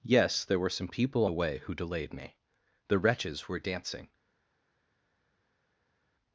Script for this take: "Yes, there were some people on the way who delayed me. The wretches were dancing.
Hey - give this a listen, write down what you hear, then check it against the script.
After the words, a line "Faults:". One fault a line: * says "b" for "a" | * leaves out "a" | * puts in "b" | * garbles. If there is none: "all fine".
"Yes, there were some people the way who delayed me. The wretches were dancing.
Faults:
* leaves out "on"